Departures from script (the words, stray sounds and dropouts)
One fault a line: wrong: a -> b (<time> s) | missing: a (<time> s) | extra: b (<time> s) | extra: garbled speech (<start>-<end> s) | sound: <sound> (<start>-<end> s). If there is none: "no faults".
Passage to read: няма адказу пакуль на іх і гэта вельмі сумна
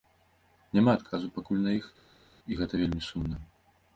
no faults